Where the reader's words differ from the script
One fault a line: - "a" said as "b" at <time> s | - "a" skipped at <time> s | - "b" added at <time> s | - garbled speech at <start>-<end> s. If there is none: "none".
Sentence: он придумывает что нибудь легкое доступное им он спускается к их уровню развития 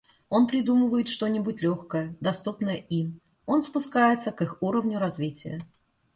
none